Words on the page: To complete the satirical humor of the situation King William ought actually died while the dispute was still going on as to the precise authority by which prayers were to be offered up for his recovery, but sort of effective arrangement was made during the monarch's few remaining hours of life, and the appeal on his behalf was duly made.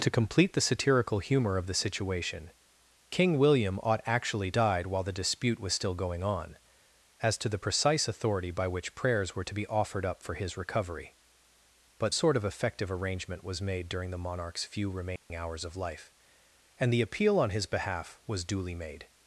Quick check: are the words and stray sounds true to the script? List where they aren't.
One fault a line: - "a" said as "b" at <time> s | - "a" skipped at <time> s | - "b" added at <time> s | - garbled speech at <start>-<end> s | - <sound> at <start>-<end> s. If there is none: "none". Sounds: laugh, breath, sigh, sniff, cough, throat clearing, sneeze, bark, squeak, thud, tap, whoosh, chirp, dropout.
- dropout at 15.2-15.3 s